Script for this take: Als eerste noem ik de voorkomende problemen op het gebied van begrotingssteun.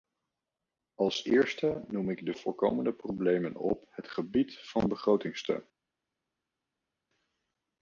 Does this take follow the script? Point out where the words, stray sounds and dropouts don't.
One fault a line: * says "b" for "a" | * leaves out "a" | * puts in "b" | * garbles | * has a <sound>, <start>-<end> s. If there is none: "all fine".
all fine